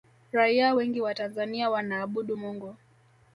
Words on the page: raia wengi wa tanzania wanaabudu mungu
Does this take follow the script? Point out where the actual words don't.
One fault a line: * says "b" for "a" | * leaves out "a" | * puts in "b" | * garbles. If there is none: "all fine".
all fine